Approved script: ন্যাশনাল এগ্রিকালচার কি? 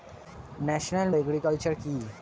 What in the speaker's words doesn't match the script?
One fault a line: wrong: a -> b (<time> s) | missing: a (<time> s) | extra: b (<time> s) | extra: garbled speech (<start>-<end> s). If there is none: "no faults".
no faults